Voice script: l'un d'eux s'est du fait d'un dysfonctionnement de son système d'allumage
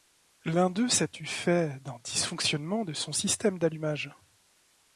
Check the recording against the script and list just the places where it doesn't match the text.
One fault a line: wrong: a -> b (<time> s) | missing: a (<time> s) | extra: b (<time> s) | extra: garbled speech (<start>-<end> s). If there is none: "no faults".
no faults